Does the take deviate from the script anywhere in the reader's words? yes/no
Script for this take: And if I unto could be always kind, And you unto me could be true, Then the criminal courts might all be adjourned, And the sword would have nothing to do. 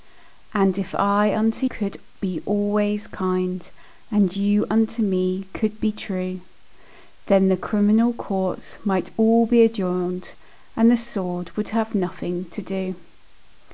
no